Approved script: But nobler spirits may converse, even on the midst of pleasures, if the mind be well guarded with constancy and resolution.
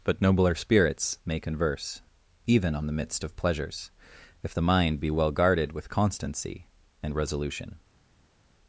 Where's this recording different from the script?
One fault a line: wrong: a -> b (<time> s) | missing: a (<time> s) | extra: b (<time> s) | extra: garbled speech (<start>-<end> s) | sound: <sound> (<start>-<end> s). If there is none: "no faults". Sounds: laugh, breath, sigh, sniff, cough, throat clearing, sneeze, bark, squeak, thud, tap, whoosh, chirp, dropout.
no faults